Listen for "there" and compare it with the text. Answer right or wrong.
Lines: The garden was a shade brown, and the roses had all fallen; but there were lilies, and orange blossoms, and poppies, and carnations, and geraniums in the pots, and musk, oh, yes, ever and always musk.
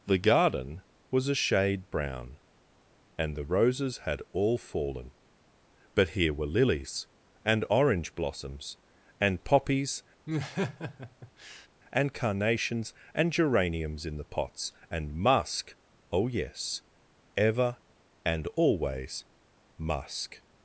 wrong